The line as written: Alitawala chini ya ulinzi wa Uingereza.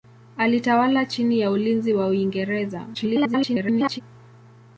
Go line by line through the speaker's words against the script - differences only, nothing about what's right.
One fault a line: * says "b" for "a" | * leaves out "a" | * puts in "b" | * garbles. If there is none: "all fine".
* garbles